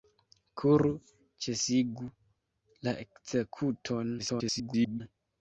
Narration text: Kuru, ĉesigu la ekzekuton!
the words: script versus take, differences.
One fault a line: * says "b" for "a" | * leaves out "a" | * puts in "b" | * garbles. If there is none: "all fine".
* garbles